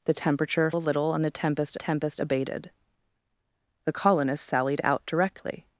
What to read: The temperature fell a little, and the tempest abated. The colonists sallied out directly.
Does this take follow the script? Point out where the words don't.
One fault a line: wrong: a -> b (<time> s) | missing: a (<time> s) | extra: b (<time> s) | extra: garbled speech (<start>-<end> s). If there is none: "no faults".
missing: fell (0.7 s)
extra: tempest (1.8 s)